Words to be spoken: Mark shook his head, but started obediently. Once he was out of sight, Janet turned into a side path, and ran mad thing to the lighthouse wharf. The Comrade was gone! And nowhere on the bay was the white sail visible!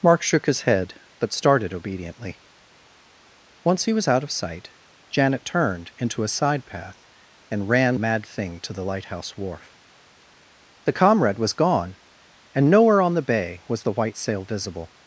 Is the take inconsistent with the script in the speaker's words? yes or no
no